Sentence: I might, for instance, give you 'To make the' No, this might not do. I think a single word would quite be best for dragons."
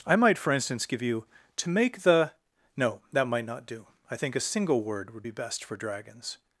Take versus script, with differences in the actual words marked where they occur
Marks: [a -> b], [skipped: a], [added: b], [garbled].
I might, for instance, give you 'To make the' No, [this -> that] might not do. I think a single word would [skipped: quite] be best for dragons."